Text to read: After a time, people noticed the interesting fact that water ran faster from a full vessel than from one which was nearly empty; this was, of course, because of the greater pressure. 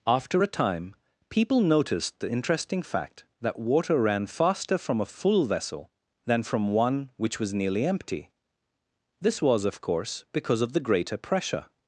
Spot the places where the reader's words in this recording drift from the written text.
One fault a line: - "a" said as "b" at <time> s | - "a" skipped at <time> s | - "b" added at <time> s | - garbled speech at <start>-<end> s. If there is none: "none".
none